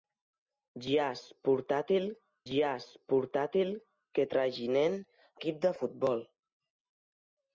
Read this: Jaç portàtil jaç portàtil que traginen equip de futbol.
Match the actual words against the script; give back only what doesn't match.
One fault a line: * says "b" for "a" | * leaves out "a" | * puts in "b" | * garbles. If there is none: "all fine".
all fine